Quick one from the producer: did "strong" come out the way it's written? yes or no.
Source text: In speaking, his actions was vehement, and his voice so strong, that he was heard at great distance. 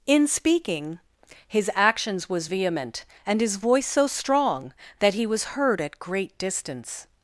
yes